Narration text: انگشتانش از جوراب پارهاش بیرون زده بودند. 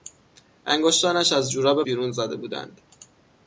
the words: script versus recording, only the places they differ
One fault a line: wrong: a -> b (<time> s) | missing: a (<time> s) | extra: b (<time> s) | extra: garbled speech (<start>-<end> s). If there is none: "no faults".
missing: پارهاش (1.8 s)